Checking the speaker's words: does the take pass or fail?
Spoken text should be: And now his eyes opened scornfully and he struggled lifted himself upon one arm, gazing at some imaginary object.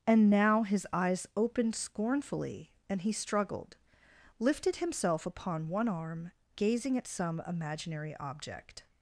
pass